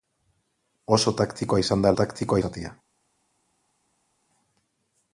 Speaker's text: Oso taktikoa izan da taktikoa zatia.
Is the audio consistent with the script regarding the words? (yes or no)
yes